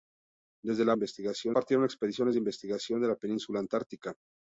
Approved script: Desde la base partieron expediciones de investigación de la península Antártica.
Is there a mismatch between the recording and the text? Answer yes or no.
yes